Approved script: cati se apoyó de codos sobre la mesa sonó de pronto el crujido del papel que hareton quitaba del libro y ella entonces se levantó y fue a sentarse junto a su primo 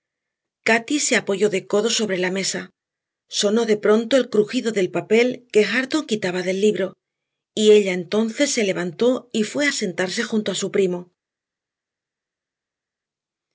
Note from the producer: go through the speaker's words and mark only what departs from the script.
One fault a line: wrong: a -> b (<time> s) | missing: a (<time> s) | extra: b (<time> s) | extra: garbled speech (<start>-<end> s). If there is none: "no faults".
no faults